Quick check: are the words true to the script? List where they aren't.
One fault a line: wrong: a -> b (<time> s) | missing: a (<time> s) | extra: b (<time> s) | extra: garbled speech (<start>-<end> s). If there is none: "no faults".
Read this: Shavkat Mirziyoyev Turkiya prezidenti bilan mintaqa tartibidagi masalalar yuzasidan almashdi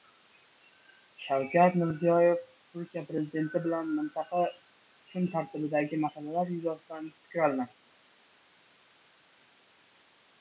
extra: kun (5.1 s)
extra: fikr (7.2 s)